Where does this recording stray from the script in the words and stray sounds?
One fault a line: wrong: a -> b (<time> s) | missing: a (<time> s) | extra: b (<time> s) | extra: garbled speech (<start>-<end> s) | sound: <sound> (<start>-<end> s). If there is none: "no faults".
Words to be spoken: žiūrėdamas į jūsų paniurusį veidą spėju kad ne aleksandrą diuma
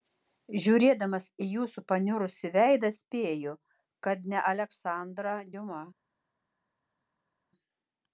no faults